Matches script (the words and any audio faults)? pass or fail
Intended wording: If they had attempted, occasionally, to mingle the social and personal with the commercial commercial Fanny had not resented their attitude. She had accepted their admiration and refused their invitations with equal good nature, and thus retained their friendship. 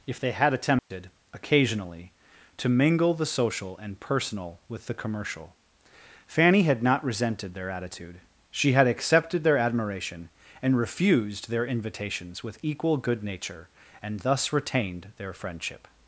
fail